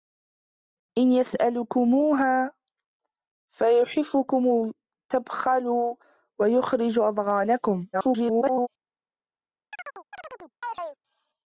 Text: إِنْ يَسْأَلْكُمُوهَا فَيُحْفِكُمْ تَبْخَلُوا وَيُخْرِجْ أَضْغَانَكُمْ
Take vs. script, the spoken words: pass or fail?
fail